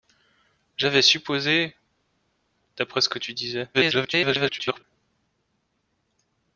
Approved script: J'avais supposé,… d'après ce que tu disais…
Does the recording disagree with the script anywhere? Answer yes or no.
yes